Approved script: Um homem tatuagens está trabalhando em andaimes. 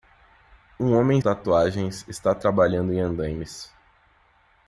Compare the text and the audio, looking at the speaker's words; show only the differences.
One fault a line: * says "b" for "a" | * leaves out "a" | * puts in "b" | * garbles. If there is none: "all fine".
all fine